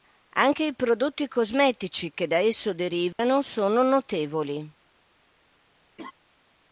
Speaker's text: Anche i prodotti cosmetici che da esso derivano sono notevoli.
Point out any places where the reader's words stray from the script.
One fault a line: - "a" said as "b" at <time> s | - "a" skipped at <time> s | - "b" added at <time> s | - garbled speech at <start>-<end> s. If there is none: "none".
none